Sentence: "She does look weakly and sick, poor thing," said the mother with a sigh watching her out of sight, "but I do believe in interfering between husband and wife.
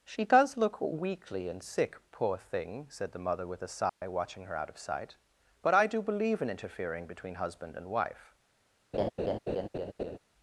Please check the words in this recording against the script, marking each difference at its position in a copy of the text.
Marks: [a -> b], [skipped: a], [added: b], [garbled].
"She does look weakly and sick, poor thing," said the mother with a sigh watching her out of sight, "but I do believe in interfering between husband and wife.